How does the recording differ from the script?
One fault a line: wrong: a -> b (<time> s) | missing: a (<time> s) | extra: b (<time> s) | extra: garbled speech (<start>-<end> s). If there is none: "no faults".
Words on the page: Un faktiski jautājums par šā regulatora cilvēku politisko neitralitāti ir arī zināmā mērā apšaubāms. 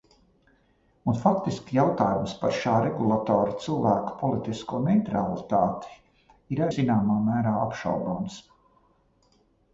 missing: arī (6.7 s)